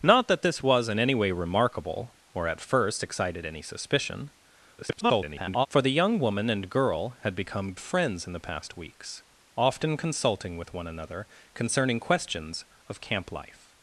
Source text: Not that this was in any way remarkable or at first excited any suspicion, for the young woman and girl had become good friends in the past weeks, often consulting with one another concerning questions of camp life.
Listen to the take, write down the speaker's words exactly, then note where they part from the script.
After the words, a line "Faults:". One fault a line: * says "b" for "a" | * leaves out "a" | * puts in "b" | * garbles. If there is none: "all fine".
Not that this was in any way remarkable or at first excited any suspicion, [garbled] for the young woman and girl had become friends in the past weeks, often consulting with one another concerning questions of camp life.
Faults:
* garbles
* leaves out "good"